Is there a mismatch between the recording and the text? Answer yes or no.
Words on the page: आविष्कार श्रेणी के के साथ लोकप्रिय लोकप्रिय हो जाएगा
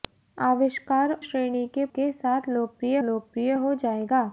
no